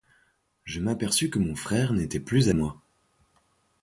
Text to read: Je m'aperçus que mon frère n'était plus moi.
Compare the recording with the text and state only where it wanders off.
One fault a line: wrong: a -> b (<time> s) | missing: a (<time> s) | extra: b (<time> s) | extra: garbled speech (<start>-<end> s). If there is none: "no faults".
no faults